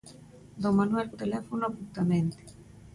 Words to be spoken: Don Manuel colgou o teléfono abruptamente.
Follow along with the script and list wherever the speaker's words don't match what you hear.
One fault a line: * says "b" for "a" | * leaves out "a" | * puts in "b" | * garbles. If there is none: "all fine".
* leaves out "colgou"